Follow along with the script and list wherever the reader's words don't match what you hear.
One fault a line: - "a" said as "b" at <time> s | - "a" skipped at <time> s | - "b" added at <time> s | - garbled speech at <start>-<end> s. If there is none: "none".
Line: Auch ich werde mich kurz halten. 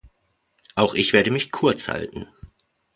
none